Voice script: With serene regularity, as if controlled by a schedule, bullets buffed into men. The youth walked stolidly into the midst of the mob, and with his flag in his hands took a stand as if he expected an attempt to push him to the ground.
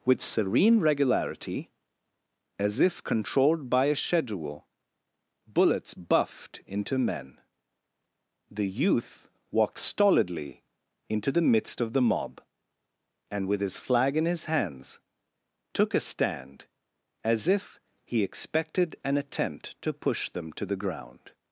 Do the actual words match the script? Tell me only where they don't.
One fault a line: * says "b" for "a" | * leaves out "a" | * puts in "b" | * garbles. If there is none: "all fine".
* says "them" for "him"